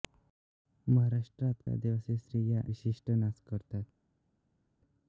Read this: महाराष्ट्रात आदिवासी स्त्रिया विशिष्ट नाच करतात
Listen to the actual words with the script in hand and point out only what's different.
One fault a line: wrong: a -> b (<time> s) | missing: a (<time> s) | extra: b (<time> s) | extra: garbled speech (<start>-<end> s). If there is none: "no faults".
no faults